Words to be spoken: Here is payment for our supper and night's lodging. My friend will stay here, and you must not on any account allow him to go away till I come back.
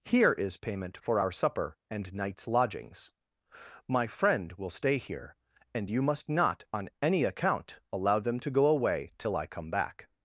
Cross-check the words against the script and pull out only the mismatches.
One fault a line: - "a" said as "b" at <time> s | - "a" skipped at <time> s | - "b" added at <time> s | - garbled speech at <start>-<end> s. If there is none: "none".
- "lodging" said as "lodgings" at 2.5 s
- "him" said as "them" at 8.2 s